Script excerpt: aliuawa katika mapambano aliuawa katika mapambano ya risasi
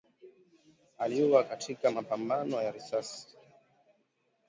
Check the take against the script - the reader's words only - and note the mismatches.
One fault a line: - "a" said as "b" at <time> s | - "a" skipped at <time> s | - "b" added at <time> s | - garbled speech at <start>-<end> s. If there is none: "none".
- "aliuawa katika mapambano" skipped at 2.6 s